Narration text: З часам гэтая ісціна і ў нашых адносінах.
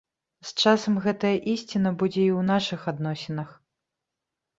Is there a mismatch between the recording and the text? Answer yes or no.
yes